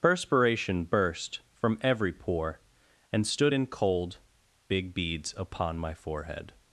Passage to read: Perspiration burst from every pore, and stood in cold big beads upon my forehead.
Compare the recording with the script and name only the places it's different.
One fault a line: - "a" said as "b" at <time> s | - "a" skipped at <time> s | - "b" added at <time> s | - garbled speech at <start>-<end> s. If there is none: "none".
none